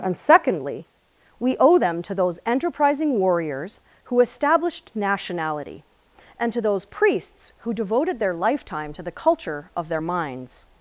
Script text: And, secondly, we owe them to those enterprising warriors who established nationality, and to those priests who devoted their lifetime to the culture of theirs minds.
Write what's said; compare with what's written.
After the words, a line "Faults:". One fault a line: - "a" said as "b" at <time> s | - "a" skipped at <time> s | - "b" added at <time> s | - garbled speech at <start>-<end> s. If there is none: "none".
And, secondly, we owe them to those enterprising warriors who established nationality, and to those priests who devoted their lifetime to the culture of their minds.
Faults:
- "theirs" said as "their" at 9.9 s